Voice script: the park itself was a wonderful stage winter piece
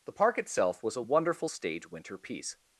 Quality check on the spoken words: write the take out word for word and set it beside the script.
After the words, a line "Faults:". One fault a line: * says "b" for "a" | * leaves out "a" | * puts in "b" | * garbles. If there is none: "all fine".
the park itself was a wonderful stage winter piece
Faults:
all fine